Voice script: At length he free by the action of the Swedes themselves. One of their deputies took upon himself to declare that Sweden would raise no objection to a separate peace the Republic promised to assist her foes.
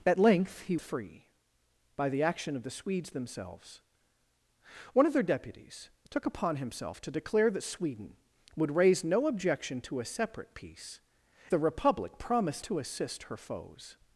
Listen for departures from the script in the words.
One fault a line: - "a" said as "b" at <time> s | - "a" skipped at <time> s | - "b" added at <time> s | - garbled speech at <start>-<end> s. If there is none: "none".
none